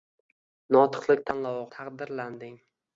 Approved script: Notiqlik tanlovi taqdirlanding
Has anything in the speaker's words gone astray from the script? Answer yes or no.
no